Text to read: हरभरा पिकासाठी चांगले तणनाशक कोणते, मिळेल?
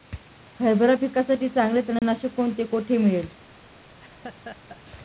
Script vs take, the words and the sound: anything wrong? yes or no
yes